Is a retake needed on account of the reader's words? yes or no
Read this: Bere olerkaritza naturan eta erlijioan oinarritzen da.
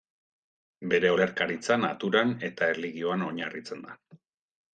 no